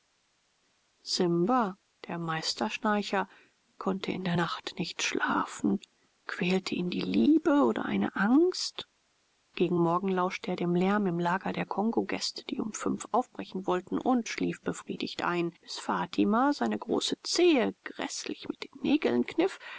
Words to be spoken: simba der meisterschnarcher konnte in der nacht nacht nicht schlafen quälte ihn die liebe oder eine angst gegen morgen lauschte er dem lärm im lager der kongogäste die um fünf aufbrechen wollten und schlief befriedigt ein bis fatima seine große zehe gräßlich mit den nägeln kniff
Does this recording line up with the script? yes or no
no